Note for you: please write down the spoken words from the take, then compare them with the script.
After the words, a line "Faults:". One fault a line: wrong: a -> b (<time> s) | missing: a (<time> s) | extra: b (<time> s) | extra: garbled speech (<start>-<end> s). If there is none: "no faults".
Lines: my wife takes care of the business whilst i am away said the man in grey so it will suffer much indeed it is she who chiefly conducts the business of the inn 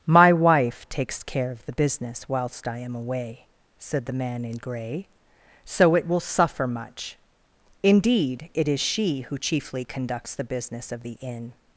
my wife takes care of the business whilst i am away said the man in grey so it will suffer much indeed it is she who chiefly conducts the business of the inn
Faults:
no faults